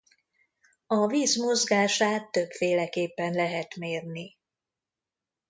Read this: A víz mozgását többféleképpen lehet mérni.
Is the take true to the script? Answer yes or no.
yes